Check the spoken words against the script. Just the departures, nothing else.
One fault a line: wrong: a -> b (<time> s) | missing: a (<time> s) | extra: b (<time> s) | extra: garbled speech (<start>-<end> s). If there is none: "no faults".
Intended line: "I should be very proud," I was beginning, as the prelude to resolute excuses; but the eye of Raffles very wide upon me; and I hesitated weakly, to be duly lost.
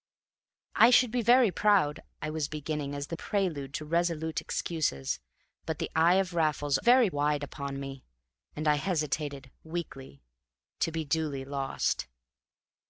no faults